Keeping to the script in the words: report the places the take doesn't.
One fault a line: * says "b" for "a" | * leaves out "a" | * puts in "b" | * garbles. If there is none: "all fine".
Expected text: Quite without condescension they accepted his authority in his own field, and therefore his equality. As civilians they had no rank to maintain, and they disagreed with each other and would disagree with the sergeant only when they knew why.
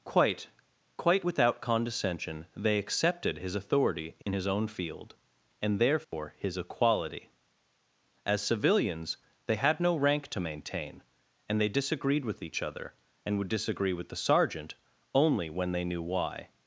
* puts in "quite"